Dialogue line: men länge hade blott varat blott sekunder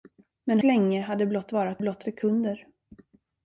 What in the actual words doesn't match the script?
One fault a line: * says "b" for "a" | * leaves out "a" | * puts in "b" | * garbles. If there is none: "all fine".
all fine